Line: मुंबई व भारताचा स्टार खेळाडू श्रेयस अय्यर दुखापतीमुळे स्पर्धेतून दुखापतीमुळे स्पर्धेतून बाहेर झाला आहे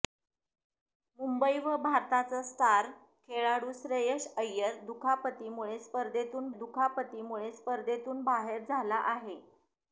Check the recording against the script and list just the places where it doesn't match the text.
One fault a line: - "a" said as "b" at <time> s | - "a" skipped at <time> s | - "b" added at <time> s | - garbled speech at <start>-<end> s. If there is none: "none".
none